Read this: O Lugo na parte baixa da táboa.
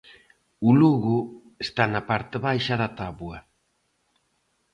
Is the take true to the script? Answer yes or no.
no